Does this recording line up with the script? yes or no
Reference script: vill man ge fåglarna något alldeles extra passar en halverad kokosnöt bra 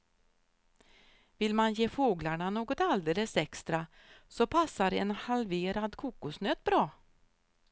no